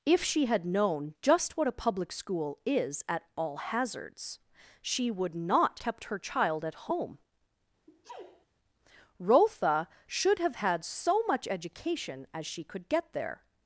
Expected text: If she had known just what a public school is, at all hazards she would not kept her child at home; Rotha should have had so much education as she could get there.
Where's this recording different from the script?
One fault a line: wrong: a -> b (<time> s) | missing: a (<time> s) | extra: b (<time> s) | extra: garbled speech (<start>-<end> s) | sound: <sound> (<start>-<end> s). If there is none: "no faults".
sound: sneeze (7.9-8.5 s)